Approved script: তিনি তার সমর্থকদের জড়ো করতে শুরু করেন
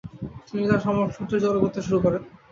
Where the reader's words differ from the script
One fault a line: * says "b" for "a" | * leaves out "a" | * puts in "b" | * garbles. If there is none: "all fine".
all fine